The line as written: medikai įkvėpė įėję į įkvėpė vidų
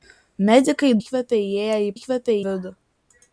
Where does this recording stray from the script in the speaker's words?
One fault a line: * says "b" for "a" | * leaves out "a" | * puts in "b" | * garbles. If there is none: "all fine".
all fine